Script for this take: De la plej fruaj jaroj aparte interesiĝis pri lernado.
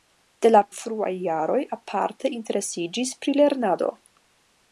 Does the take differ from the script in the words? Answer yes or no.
yes